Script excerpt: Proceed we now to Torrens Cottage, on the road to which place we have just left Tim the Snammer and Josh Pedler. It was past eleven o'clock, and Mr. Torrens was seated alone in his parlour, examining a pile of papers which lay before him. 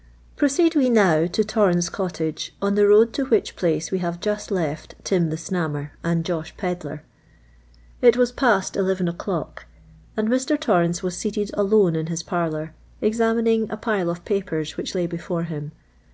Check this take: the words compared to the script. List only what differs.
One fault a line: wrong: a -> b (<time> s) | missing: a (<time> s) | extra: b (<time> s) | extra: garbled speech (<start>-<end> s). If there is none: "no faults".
no faults